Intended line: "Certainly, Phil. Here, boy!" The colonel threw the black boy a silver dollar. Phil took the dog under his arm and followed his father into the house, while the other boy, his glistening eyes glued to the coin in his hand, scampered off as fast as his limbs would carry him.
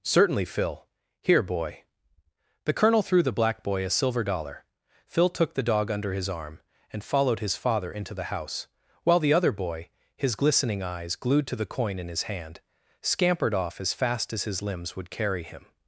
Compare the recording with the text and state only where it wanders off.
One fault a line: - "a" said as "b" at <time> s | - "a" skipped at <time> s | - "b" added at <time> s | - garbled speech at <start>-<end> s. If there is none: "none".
none